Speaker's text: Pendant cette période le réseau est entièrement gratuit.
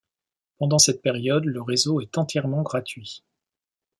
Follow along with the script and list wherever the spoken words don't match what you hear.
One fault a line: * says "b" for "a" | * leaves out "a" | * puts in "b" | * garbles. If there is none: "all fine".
all fine